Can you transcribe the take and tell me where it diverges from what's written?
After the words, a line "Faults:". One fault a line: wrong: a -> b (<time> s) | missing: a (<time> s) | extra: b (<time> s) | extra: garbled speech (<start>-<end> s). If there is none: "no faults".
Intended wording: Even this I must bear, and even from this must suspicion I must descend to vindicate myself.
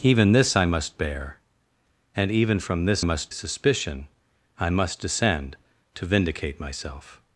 Even this I must bear, and even from this must suspicion I must descend to vindicate myself.
Faults:
no faults